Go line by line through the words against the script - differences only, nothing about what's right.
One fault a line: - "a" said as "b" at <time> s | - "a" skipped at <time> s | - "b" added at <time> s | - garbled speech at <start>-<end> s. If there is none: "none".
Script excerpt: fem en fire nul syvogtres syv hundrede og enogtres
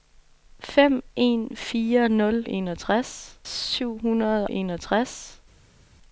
- "syvogtres" said as "enogtres" at 2.5 s
- "og" skipped at 4.5 s